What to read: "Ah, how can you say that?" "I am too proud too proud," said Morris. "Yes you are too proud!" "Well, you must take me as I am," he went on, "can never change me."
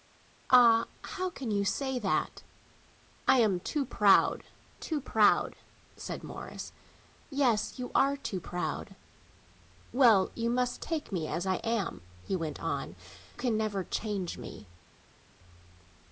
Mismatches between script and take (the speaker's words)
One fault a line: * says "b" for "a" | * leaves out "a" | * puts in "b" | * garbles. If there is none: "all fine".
all fine